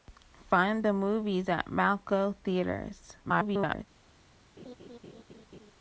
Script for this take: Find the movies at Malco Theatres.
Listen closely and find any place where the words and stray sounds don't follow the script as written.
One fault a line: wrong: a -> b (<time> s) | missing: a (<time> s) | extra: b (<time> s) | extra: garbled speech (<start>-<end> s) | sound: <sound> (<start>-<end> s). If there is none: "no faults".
extra: garbled speech (3.2-3.9 s)
sound: laugh (4.6-5.7 s)